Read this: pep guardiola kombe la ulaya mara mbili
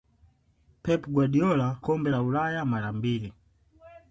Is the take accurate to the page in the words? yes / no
yes